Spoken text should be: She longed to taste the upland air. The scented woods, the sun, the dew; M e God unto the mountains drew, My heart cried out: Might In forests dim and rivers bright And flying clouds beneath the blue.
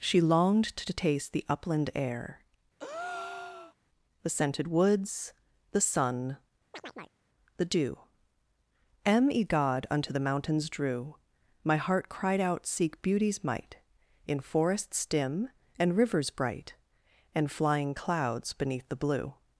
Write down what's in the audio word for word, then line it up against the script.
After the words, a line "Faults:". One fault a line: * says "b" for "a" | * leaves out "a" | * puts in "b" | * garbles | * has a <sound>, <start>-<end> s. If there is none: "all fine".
She longed to taste the upland air. The scented woods, the sun, the dew; M e God unto the mountains drew, My heart cried out: Seek Beauty's might In forests dim and rivers bright And flying clouds beneath the blue.
Faults:
* has a breath, 2.8-3.7 s
* has a chirp, 6.7-7.2 s
* puts in "Seek Beauty's"